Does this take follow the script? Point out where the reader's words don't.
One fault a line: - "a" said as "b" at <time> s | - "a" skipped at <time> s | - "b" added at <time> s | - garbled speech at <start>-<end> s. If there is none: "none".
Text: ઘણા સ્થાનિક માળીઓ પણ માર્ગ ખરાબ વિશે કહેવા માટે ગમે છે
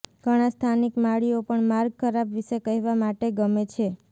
none